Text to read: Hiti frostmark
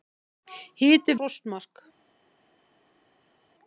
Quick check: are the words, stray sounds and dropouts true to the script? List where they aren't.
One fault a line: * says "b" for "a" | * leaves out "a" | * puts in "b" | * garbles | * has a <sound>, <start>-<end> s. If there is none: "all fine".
all fine